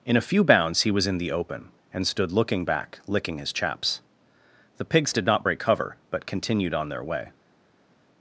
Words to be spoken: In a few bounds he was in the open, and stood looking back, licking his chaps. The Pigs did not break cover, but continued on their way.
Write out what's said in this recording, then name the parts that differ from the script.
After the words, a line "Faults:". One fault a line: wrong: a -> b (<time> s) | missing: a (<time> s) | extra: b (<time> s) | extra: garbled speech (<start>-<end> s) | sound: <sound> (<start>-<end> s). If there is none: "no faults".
In a few bounds he was in the open, and stood looking back, licking his chaps. The Pigs did not break cover, but continued on their way.
Faults:
no faults